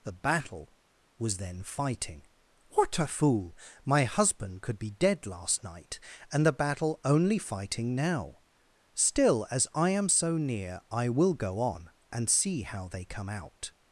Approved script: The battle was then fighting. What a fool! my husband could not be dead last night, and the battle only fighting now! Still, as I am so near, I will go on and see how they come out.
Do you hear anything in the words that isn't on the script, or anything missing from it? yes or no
yes